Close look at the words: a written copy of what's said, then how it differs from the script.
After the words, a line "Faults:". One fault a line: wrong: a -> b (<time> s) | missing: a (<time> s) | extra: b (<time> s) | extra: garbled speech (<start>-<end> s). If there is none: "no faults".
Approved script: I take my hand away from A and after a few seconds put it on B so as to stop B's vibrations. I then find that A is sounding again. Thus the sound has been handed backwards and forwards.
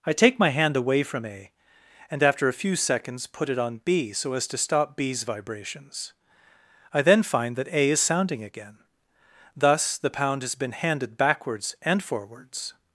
I take my hand away from A and after a few seconds put it on B so as to stop B's vibrations. I then find that A is sounding again. Thus the pound has been handed backwards and forwards.
Faults:
wrong: sound -> pound (10.1 s)